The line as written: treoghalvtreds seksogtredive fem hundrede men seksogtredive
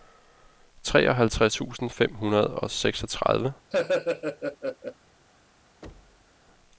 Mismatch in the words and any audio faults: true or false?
true